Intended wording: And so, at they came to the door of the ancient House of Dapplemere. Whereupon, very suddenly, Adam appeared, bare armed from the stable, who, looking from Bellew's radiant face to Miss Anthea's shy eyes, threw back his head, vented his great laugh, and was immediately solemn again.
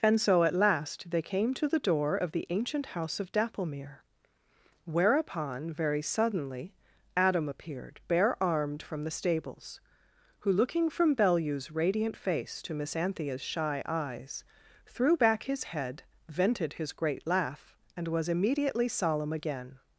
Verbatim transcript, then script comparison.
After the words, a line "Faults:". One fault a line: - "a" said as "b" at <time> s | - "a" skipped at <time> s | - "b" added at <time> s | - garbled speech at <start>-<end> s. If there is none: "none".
And so, at last, they came to the door of the ancient House of Dapplemere. Whereupon, very suddenly, Adam appeared, bare armed from the stables, who, looking from Bellew's radiant face to Miss Anthea's shy eyes, threw back his head, vented his great laugh, and was immediately solemn again.
Faults:
- "last" added at 0.6 s
- "stable" said as "stables" at 9.1 s